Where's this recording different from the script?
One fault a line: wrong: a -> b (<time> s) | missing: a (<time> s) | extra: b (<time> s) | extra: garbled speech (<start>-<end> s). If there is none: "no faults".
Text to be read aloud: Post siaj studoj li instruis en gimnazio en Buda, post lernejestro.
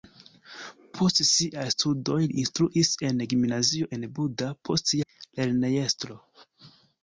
no faults